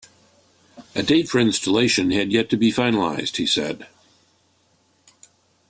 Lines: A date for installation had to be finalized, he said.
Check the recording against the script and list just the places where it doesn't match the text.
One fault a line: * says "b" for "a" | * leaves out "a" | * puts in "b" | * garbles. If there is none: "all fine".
* puts in "yet"